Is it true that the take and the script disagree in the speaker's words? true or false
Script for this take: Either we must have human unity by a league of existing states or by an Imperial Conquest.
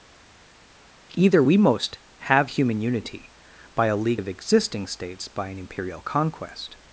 true